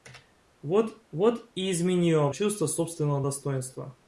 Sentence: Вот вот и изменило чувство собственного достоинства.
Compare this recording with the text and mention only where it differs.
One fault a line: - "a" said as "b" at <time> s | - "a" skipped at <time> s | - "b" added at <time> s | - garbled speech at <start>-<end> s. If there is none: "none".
none